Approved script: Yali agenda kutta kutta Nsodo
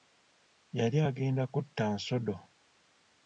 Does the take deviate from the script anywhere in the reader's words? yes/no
yes